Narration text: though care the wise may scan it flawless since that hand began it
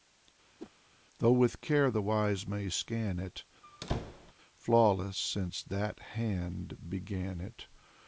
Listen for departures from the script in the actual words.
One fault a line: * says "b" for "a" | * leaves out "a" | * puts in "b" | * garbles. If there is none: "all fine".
* puts in "with"